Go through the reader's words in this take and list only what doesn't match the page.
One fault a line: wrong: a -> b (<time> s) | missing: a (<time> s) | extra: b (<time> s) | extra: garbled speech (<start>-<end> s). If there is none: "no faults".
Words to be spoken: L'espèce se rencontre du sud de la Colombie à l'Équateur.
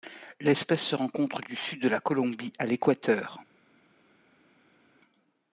no faults